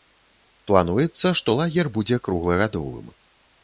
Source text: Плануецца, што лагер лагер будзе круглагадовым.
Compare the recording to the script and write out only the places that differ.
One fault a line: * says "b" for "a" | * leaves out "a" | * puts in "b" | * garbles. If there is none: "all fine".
* leaves out "лагер"